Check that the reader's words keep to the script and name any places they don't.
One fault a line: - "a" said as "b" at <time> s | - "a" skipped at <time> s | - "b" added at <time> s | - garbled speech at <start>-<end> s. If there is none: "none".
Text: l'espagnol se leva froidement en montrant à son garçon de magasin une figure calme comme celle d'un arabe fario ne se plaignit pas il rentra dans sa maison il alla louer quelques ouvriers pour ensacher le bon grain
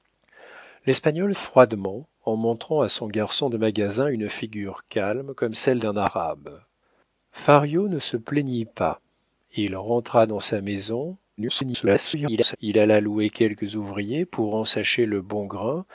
- "se leva" skipped at 1.4 s
- garbled speech at 11.4-12.6 s